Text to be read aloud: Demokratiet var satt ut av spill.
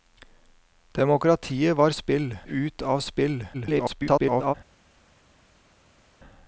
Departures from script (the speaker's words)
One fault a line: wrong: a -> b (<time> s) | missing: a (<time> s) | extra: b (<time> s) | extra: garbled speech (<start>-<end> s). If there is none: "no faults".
wrong: satt -> spill (1.9 s)
extra: garbled speech (3.5-4.5 s)